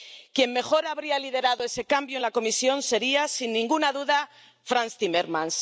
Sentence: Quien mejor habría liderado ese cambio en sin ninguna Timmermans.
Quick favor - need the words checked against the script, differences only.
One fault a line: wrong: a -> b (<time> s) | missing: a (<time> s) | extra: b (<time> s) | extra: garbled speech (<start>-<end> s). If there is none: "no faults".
extra: la Comisión sería (2.2 s)
extra: duda Frans (3.9 s)